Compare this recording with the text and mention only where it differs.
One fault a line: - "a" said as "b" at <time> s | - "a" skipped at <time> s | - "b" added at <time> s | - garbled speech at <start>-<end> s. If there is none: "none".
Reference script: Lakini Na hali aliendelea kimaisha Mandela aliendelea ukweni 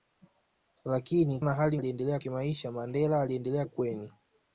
none